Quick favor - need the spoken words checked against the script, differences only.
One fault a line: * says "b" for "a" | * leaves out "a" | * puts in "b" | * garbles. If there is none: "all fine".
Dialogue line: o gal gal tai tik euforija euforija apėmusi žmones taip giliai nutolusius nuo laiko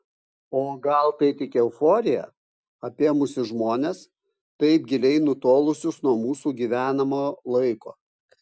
* leaves out "gal"
* leaves out "euforija"
* puts in "mūsų gyvenamo"